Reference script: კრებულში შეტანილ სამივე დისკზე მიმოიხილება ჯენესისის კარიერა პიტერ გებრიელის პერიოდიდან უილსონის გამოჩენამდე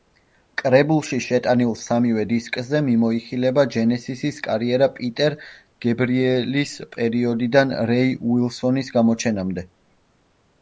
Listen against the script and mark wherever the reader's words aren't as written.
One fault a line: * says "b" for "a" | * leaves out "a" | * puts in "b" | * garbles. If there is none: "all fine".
* puts in "რეი"